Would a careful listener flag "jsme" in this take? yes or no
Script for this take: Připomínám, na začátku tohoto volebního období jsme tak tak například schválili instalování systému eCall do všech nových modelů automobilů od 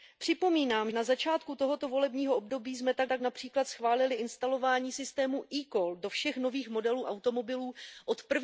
no